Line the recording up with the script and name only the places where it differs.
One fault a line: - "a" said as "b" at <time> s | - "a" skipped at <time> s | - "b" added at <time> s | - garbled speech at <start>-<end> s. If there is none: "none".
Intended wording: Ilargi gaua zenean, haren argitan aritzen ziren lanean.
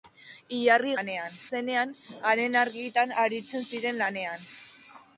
- "gaua" said as "lanean" at 1.0 s